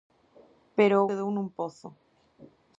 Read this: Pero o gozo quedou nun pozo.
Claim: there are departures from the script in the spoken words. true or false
true